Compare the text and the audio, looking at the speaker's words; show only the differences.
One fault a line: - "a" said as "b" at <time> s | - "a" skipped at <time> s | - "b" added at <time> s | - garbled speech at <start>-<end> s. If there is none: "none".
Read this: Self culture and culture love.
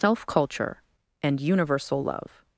- "culture" said as "universal" at 1.4 s